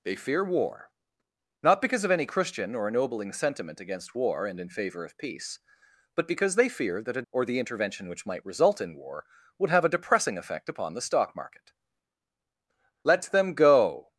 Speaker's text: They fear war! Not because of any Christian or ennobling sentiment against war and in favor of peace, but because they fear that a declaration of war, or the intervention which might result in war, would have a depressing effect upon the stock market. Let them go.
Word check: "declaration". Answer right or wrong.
wrong